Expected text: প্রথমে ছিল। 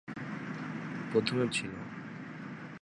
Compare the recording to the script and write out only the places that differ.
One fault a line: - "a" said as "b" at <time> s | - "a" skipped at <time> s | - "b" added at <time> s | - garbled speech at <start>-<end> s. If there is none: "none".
none